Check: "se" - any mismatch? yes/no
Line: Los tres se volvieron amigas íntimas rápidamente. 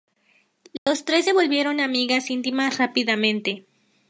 no